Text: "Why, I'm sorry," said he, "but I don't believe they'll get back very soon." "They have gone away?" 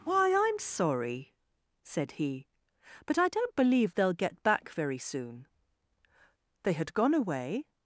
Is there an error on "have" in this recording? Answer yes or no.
yes